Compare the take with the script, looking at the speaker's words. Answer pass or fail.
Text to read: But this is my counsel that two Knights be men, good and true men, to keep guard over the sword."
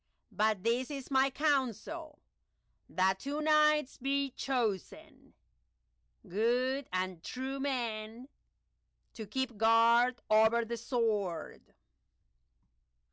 fail